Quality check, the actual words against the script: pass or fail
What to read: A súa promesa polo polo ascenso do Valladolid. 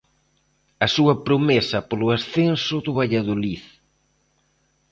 fail